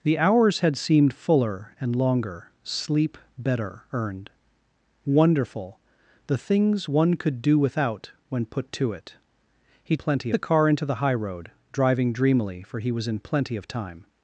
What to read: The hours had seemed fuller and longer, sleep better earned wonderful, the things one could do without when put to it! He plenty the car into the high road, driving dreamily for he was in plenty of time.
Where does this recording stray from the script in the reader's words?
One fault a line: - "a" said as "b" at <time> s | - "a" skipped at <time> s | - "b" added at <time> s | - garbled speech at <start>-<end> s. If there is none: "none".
none